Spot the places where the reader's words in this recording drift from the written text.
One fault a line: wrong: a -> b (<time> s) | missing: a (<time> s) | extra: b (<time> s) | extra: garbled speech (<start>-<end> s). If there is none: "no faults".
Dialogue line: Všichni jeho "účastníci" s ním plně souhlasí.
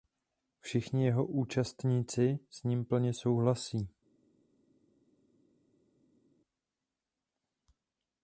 no faults